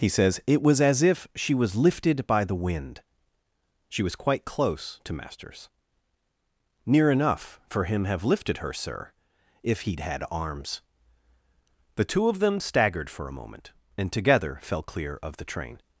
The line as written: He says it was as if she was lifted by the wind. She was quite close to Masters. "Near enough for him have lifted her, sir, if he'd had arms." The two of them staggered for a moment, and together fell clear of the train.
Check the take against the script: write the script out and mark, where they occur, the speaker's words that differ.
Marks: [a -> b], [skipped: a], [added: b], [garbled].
He says it was as if she was lifted by the wind. She was quite close to Masters. "Near enough for him have lifted her, sir, if he'd had arms." The two of them staggered for a moment, and together fell clear of the train.